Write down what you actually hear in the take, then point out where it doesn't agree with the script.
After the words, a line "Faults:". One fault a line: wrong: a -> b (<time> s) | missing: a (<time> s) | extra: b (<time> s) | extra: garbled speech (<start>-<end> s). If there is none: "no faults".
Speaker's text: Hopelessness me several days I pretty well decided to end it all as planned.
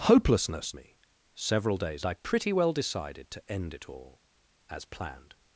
Hopelessness me several days I pretty well decided to end it all as planned.
Faults:
no faults